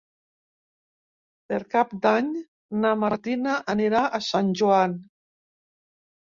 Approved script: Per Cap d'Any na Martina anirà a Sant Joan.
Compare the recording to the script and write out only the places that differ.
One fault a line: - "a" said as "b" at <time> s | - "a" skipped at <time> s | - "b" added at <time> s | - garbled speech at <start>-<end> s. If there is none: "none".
none